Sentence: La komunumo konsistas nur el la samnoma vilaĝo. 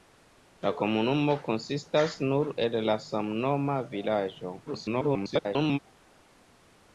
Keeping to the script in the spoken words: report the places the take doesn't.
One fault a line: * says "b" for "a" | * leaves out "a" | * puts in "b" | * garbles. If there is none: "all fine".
* garbles